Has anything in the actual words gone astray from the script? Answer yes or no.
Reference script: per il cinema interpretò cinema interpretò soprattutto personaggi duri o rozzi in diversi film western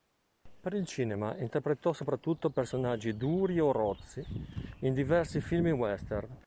yes